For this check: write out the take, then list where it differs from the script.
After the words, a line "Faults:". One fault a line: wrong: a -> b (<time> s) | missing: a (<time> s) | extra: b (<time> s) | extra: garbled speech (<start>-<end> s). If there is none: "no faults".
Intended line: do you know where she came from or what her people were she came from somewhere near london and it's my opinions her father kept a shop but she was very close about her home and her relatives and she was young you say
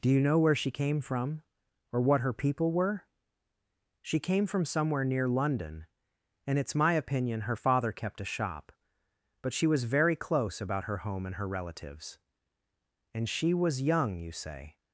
do you know where she came from or what her people were she came from somewhere near london and it's my opinion her father kept a shop but she was very close about her home and her relatives and she was young you say
Faults:
wrong: opinions -> opinion (6.9 s)